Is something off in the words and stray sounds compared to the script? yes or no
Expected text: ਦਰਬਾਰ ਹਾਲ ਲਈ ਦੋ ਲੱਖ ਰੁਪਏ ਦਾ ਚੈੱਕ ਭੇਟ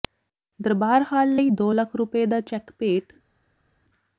no